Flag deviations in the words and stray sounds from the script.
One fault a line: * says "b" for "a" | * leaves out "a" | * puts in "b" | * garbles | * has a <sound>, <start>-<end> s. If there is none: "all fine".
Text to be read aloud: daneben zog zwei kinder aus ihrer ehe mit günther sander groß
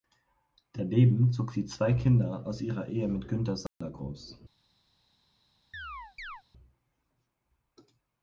* puts in "sie"
* has a dropout, 3.7-3.8 s
* has a chirp, 5.7-6.4 s